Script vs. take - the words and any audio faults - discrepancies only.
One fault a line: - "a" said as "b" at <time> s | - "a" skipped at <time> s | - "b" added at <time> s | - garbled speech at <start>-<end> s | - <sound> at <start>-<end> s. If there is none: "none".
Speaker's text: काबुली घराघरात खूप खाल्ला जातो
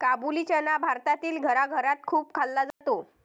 - "चना भारतातील" added at 0.4 s
- dropout at 2.7-2.8 s